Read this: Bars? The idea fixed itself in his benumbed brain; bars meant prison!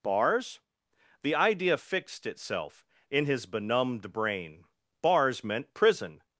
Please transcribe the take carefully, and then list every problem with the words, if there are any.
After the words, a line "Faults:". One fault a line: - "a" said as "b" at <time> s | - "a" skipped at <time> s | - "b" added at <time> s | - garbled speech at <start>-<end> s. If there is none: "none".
Bars? The idea fixed itself in his benumbed brain; bars meant prison!
Faults:
none